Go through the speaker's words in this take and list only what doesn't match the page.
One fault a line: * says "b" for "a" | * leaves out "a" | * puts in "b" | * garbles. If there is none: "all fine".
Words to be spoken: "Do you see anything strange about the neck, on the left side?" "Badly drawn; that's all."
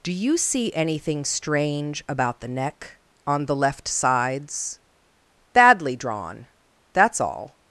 * says "sides" for "side"